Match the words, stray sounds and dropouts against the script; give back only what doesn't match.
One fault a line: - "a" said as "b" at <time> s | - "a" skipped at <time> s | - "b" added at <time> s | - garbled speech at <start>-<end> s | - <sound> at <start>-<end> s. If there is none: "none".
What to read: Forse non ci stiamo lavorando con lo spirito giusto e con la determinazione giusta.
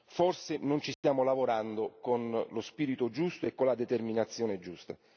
- dropout at 0.9-1.0 s